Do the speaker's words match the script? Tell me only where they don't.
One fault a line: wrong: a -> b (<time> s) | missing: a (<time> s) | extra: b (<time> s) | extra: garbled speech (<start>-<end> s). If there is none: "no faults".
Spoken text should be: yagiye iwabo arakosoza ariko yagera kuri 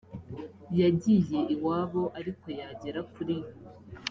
missing: arakosoza (2.0 s)